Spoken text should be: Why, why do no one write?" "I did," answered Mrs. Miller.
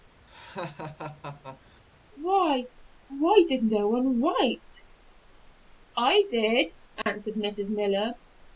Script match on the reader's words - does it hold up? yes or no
no